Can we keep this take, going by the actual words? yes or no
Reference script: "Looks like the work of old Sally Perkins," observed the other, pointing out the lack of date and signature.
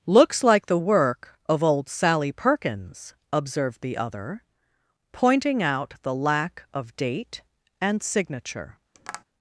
yes